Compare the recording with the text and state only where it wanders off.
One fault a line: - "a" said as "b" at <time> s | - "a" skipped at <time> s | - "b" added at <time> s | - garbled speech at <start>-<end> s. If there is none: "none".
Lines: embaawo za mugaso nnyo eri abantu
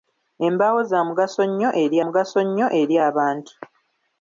- "mugaso nnyo eri" added at 2.0 s